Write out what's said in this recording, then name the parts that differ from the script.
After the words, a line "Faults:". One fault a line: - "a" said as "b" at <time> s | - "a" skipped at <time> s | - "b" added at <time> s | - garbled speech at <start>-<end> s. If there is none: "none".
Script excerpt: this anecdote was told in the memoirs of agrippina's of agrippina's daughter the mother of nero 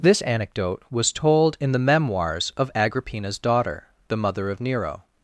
this anecdote was told in the memoirs of agrippina's daughter the mother of nero
Faults:
- "of agrippina's" skipped at 3.4 s